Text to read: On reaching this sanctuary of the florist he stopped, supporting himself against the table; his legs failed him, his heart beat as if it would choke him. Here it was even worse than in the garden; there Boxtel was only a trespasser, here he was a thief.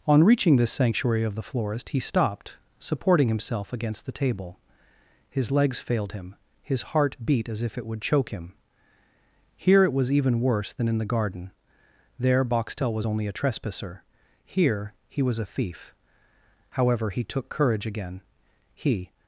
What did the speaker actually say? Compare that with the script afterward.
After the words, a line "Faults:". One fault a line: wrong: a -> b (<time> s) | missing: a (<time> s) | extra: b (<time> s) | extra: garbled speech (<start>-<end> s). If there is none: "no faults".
On reaching this sanctuary of the florist he stopped, supporting himself against the table; his legs failed him, his heart beat as if it would choke him. Here it was even worse than in the garden; there Boxtel was only a trespasser, here he was a thief. However, he took courage again: he
Faults:
extra: However he took courage again he (16.7 s)